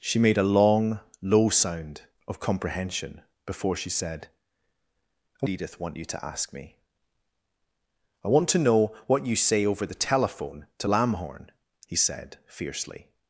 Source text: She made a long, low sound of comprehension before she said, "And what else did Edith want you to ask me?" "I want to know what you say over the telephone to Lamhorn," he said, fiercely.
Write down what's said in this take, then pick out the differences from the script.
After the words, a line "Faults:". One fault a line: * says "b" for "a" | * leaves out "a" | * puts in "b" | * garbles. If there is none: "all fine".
She made a long, low sound of comprehension before she said, "And Edith want you to ask me?" "I want to know what you say over the telephone to Lamhorn," he said, fiercely.
Faults:
* leaves out "what else did"